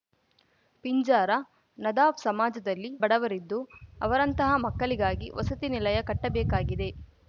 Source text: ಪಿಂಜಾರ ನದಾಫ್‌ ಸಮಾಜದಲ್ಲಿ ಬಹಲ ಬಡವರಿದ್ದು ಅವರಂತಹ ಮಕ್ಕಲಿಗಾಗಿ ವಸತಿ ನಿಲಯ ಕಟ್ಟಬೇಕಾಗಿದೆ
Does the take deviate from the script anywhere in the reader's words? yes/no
yes